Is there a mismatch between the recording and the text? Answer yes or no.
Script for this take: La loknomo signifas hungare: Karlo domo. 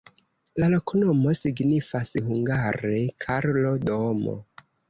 no